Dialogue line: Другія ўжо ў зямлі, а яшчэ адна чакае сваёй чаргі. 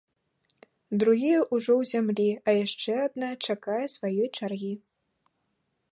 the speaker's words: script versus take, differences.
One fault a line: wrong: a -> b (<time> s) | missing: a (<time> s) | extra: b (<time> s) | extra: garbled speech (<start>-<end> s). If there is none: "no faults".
no faults